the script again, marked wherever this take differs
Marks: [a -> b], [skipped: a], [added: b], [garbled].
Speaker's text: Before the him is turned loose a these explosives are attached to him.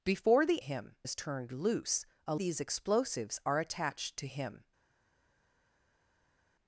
Before the him is turned loose a these explosives are attached to him.